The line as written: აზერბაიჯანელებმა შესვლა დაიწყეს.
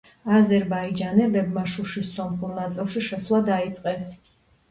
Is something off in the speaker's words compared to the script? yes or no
yes